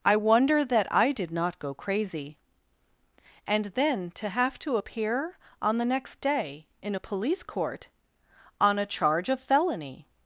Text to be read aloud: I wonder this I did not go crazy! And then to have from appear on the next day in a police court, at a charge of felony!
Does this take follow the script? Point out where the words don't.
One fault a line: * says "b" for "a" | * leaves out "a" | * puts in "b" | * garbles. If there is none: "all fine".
* says "that" for "this"
* says "to" for "from"
* says "on" for "at"